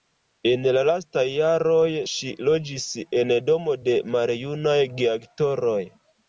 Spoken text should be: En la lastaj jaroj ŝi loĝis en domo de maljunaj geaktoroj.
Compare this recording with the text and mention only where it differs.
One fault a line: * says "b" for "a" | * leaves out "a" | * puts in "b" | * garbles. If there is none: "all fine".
all fine